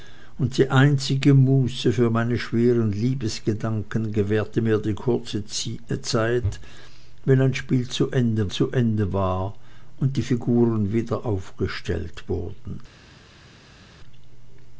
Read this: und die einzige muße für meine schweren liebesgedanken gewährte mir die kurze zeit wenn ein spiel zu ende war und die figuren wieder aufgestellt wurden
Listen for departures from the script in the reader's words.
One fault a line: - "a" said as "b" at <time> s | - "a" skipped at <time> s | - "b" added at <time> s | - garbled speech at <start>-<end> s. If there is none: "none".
- "zu ende" added at 8.5 s